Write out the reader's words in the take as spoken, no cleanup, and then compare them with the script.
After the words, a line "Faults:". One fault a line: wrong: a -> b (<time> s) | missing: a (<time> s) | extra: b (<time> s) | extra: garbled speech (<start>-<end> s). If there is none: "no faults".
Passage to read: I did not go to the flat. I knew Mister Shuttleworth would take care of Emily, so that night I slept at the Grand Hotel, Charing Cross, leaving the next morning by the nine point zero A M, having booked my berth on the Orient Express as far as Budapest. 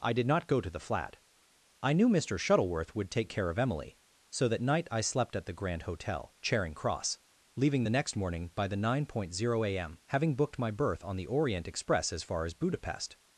I did not go to the flat. I knew Mister Shuttleworth would take care of Emily, so that night I slept at the Grand Hotel, Charing Cross, leaving the next morning by the nine point zero A M, having booked my berth on the Orient Express as far as Budapest.
Faults:
no faults